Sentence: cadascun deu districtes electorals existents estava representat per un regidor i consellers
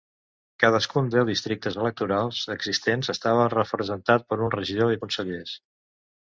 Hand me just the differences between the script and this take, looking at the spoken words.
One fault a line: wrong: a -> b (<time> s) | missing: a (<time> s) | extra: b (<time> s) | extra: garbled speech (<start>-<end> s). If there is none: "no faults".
no faults